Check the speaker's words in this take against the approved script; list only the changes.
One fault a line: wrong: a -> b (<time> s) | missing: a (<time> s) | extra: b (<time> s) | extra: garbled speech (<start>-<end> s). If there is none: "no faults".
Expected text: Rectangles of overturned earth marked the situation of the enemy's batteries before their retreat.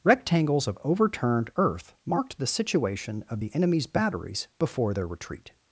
no faults